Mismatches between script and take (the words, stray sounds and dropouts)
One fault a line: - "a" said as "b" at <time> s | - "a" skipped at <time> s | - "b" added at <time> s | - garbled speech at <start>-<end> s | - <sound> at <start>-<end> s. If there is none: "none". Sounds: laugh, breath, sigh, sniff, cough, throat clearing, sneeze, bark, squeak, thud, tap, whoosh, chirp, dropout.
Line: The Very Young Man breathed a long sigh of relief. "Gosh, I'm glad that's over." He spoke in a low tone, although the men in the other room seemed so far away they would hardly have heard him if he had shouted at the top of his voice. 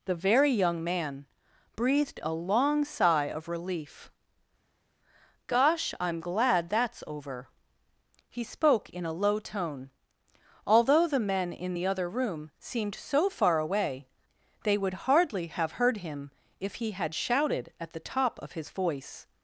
none